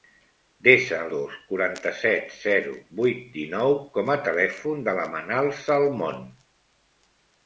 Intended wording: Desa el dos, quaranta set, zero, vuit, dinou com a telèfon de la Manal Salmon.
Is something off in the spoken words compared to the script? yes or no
no